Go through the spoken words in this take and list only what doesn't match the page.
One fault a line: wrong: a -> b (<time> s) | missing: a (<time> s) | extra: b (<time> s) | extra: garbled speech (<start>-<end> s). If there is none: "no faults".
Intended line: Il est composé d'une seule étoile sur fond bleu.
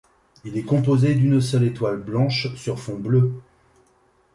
extra: blanche (2.0 s)